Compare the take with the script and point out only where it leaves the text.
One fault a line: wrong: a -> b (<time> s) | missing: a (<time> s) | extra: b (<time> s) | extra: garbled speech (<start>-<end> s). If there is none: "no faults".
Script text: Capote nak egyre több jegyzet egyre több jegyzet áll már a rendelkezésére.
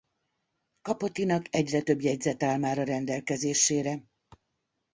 missing: egyre több jegyzet (2.4 s)